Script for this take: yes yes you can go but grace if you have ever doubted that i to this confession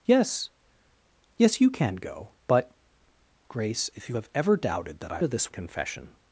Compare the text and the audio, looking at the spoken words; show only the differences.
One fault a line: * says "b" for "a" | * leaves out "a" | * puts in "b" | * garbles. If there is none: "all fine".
all fine